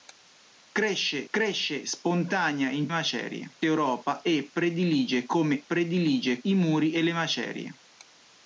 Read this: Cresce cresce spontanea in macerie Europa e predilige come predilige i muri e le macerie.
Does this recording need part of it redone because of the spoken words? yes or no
no